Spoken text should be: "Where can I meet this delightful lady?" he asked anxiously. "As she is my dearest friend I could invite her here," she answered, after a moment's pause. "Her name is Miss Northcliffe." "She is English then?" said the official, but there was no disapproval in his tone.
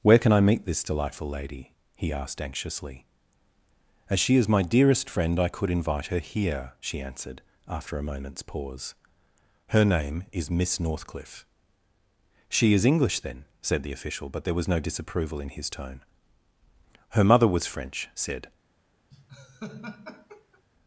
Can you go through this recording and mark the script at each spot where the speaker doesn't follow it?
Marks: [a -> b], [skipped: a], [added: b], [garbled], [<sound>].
"Where can I meet this delightful lady?" he asked anxiously. "As she is my dearest friend I could invite her here," she answered, after a moment's pause. "Her name is Miss Northcliffe." "She is English then?" said the official, but there was no disapproval in his tone. [added: Her mother was French said] [laugh]